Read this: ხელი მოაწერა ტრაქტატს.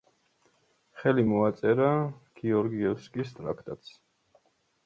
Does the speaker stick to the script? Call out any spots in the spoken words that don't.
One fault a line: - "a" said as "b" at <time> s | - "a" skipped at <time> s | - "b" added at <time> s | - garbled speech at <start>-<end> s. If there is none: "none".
- "გეორგიევსკის" added at 2.4 s